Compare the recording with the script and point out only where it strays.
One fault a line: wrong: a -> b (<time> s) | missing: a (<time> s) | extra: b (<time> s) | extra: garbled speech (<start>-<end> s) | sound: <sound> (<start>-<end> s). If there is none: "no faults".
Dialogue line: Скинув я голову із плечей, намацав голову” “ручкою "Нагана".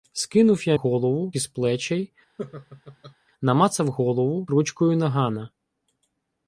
sound: laugh (2.4-3.2 s)